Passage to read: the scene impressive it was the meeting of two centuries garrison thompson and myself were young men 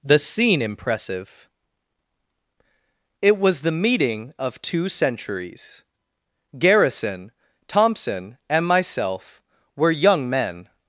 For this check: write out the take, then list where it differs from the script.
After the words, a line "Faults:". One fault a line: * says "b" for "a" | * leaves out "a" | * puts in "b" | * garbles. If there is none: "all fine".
the scene impressive it was the meeting of two centuries garrison thompson and myself were young men
Faults:
all fine